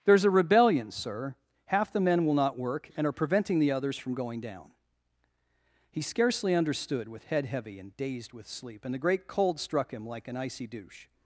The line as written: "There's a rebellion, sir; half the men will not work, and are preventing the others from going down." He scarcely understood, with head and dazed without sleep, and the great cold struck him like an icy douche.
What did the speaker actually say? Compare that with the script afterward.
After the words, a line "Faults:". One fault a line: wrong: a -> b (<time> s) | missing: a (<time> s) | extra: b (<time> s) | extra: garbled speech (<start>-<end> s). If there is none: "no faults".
"There's a rebellion, sir; half the men will not work, and are preventing the others from going down." He scarcely understood, with head heavy and dazed with sleep, and the great cold struck him like an icy douche.
Faults:
extra: heavy (7.5 s)
wrong: without -> with (8.3 s)